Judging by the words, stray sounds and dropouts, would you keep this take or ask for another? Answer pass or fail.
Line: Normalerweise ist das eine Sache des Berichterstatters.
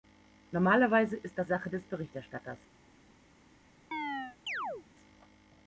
fail